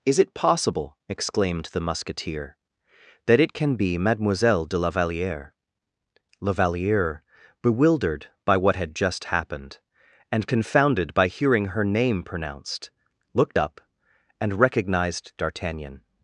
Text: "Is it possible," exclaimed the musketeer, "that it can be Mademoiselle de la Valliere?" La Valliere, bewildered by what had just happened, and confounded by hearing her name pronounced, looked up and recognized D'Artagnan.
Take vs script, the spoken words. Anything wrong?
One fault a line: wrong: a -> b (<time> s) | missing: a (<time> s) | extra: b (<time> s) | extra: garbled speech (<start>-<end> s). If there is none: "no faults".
no faults